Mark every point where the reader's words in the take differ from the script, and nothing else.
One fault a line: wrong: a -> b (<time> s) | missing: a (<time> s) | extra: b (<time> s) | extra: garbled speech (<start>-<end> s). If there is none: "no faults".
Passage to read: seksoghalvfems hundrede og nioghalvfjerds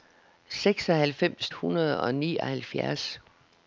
no faults